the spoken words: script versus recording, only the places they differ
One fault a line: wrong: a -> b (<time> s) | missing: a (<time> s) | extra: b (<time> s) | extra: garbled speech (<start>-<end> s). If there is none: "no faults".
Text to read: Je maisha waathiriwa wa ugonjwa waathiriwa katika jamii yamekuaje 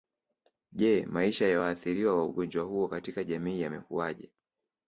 extra: ya (1.5 s)
wrong: waathiriwa -> huo (2.6 s)